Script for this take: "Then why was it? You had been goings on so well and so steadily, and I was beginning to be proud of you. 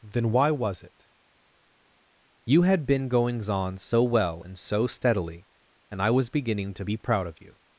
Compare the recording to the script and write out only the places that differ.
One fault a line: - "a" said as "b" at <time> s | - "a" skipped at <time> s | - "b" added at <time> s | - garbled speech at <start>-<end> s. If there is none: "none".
none